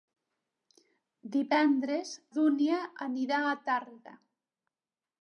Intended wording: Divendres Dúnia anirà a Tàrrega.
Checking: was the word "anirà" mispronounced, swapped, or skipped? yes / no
no